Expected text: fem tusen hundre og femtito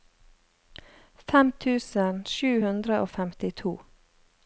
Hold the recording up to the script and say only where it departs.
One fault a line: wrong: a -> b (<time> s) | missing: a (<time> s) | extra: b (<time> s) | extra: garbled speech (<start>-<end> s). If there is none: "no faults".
extra: sju (2.3 s)